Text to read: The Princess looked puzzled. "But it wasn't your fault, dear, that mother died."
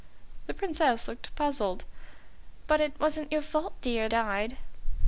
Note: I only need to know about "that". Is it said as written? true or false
false